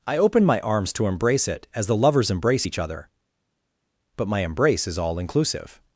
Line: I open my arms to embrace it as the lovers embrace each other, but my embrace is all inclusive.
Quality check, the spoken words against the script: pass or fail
pass